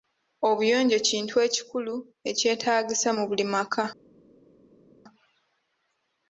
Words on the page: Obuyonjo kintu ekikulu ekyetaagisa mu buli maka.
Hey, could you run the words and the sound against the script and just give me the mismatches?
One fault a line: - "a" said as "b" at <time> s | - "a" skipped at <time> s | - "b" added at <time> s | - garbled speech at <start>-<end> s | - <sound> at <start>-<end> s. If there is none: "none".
none